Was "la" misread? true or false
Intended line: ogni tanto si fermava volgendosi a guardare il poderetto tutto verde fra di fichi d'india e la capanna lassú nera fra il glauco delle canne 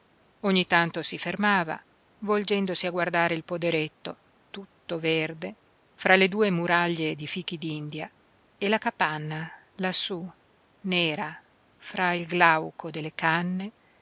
false